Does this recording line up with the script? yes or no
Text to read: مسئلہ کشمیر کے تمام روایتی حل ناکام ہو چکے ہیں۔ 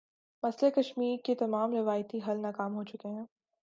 yes